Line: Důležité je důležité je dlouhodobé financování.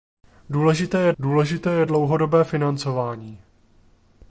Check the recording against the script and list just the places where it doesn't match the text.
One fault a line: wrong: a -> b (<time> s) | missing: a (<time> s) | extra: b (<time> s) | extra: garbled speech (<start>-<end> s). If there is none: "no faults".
no faults